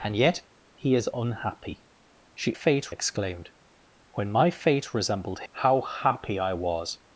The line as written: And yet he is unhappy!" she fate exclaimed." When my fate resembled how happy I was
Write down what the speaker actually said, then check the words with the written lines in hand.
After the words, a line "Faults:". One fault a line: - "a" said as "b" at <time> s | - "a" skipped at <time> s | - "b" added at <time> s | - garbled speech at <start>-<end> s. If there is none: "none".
And yet he is unhappy!" she fate exclaimed." When my fate resembled how happy I was
Faults:
none